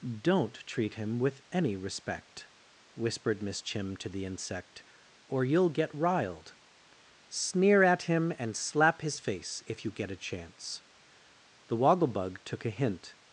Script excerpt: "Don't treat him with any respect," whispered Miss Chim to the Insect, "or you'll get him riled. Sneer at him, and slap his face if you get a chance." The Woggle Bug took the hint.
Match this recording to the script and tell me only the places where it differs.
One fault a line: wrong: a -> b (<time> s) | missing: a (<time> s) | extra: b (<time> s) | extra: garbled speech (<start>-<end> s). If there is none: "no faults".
missing: him (6.0 s)
wrong: the -> a (12.6 s)